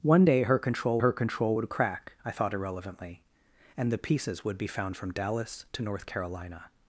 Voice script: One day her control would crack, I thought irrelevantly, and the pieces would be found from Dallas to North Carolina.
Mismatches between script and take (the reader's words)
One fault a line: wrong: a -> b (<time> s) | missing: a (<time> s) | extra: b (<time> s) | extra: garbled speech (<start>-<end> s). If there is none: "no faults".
extra: her control (1.0 s)